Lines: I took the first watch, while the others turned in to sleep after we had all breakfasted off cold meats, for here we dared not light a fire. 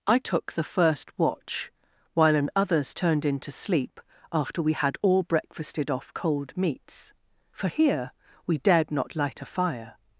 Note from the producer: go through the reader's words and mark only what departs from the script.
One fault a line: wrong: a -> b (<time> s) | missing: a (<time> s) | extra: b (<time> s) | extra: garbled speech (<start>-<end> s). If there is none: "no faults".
wrong: the -> an (2.4 s)